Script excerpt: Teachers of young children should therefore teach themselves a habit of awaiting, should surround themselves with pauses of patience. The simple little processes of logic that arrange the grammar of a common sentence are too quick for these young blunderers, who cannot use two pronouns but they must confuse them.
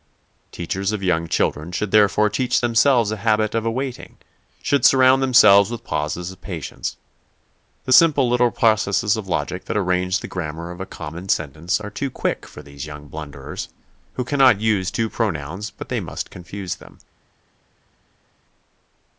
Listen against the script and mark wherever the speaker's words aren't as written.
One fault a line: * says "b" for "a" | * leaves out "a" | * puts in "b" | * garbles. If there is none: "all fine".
all fine